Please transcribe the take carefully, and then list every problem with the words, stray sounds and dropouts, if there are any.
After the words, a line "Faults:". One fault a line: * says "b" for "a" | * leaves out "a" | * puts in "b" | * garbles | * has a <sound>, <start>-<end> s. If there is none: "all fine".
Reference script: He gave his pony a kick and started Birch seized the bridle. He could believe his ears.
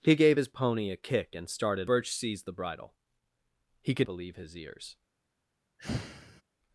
He gave his pony a kick and started Birch seized the bridle. He could believe his ears.
Faults:
* has a sigh, 5.8-6.4 s